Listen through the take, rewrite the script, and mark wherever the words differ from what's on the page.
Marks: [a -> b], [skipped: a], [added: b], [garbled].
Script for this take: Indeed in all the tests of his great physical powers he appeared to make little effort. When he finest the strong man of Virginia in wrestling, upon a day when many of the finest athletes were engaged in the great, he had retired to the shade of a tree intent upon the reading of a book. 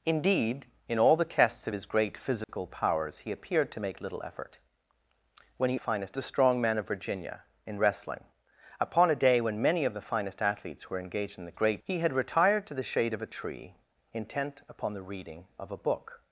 Indeed in all the tests of his great physical powers he appeared to make little effort. When he finest the strong man of Virginia in wrestling, upon a day when many of the finest athletes were engaged in the great, he had retired to the shade of a tree intent upon the reading of a book.